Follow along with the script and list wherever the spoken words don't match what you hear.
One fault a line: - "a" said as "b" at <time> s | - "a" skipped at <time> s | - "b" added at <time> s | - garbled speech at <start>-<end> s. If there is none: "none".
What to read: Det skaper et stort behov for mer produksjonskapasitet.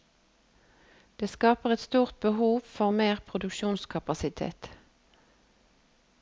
none